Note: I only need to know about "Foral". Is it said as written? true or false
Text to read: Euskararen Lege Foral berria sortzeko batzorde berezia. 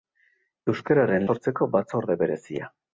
false